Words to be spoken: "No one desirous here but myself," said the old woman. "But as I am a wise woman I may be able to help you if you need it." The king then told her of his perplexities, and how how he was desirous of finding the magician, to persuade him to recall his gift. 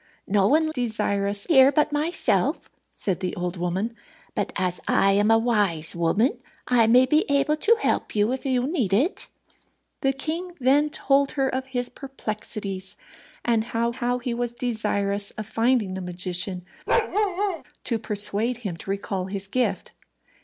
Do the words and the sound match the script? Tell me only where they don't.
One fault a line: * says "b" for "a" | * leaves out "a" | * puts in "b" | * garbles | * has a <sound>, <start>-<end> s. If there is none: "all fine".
* has a bark, 16.9-17.6 s